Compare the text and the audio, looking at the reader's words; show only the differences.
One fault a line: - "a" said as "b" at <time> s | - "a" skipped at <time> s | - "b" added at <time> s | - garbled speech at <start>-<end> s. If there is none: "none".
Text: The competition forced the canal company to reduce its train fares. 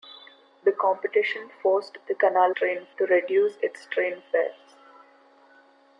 - "company" said as "train" at 2.5 s